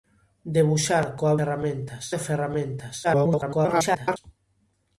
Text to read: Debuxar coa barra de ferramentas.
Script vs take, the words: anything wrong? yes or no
yes